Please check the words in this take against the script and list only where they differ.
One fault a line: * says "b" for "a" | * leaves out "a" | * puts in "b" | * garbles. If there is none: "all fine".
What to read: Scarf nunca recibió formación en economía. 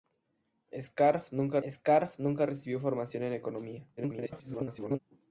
* puts in "scarf nunca"
* garbles